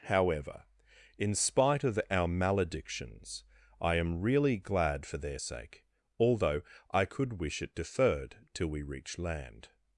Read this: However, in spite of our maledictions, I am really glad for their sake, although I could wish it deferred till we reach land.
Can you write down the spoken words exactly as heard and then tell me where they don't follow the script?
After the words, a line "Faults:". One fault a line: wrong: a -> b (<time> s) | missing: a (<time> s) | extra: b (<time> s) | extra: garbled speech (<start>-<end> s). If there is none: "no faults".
However, in spite of our maledictions, I am really glad for their sake, although I could wish it deferred till we reach land.
Faults:
no faults